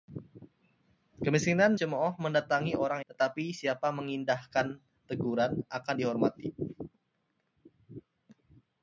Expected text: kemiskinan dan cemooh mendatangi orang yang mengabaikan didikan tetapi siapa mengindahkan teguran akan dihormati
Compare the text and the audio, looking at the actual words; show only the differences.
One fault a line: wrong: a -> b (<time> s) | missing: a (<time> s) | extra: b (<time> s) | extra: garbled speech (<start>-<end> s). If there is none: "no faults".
missing: dan (1.8 s)
missing: yang mengabaikan didikan (3.0 s)